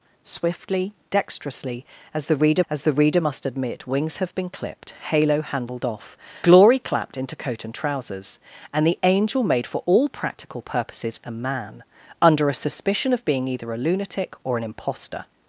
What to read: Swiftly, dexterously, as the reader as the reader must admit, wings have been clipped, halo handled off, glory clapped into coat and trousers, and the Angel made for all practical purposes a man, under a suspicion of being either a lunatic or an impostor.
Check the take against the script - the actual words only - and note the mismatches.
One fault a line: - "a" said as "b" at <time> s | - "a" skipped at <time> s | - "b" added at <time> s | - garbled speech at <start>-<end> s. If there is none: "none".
none